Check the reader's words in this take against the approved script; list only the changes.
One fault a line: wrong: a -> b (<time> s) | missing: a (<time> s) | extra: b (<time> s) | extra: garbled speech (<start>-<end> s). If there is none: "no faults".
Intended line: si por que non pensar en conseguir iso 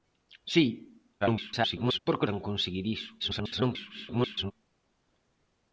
extra: garbled speech (1.2-2.0 s)
missing: non pensar (2.3 s)
extra: garbled speech (3.2-4.5 s)